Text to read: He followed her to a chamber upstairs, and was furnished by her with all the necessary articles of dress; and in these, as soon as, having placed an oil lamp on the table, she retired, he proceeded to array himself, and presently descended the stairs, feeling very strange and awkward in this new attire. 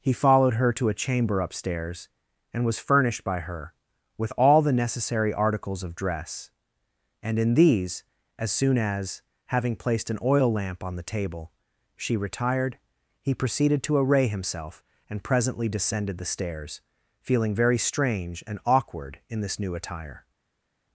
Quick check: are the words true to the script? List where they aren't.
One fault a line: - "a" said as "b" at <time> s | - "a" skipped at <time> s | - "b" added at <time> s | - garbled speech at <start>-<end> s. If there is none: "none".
none